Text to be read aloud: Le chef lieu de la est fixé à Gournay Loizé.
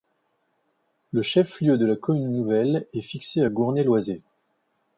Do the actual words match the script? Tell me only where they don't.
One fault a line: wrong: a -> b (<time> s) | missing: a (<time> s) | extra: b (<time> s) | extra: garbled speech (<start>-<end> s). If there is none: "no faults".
extra: commune nouvelle (1.9 s)